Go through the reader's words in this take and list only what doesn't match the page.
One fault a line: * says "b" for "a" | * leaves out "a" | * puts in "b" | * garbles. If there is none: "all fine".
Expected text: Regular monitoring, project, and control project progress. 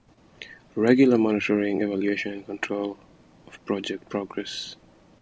* says "evaluation" for "project"
* puts in "of"